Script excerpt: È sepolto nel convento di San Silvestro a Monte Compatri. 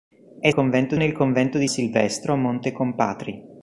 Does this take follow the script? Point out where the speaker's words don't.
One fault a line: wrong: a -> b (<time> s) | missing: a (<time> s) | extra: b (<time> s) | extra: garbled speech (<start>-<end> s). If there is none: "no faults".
wrong: sepolto -> convento (0.5 s)
missing: San (1.7 s)